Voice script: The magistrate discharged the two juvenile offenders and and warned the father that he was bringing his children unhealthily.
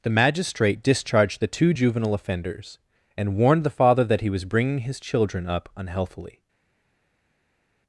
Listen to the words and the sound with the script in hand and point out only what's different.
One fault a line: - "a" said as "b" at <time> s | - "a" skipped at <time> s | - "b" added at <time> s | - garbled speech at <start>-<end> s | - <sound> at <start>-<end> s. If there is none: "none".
- "and" skipped at 3.3 s
- "up" added at 5.5 s